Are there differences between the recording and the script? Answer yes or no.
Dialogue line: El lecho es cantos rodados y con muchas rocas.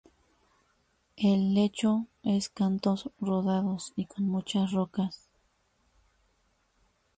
no